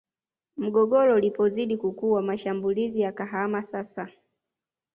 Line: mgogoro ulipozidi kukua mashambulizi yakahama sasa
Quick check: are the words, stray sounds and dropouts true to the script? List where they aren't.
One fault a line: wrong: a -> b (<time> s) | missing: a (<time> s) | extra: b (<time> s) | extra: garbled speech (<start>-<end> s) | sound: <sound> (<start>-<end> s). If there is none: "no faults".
no faults